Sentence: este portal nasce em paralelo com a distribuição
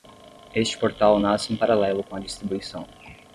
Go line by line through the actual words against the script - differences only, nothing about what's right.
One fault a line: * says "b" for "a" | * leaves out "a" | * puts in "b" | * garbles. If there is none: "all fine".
all fine